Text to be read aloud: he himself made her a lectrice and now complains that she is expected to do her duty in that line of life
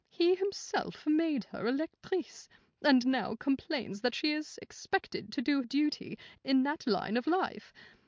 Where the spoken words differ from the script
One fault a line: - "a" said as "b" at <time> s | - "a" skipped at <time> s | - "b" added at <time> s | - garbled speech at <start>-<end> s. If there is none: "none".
- "her" skipped at 5.6 s